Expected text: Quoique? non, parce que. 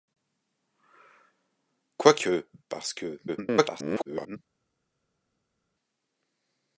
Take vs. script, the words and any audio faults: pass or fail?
fail